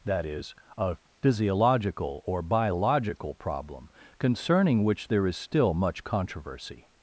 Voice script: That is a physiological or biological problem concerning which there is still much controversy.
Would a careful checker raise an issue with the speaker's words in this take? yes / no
no